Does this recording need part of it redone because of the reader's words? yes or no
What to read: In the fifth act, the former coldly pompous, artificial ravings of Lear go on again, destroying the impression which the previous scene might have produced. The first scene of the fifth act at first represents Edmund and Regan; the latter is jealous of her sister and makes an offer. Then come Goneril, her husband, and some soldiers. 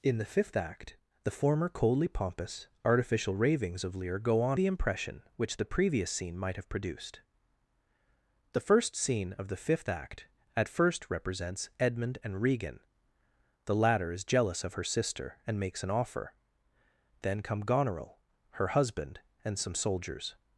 yes